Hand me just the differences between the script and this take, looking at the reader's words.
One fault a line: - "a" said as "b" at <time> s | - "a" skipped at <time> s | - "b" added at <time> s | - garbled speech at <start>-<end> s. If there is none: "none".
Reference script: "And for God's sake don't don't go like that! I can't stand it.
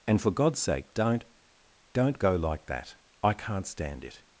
none